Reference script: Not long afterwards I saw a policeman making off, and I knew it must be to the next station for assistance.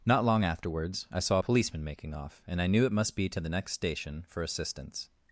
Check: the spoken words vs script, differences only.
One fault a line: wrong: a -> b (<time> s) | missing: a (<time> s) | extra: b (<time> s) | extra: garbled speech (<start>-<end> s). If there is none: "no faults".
no faults